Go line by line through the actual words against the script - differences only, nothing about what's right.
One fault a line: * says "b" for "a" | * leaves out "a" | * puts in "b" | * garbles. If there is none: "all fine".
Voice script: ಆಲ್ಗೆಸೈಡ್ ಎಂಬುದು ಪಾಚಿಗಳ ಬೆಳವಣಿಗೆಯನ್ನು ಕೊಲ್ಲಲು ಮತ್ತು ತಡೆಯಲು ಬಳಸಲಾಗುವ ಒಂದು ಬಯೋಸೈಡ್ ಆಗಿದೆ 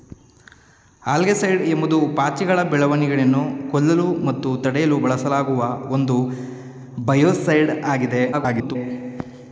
* garbles